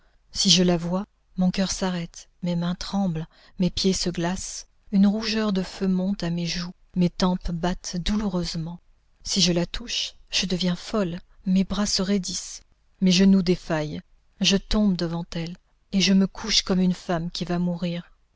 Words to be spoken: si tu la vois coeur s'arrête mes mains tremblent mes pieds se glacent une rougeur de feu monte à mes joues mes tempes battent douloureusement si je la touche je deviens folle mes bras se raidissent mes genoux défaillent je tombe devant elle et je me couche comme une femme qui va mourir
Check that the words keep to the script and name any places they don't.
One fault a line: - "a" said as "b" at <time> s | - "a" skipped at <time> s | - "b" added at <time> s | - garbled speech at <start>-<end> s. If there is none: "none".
- "tu" said as "je" at 0.5 s
- "mon" added at 1.4 s